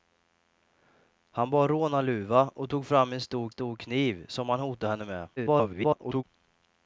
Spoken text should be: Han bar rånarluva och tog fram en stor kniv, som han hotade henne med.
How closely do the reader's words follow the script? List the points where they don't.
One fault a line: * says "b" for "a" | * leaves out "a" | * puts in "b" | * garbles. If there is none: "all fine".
* puts in "stor"
* garbles